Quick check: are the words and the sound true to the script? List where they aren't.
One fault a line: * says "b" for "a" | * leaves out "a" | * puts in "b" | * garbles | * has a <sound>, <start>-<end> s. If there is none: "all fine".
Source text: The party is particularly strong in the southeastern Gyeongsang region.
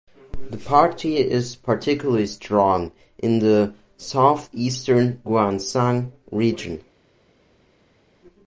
all fine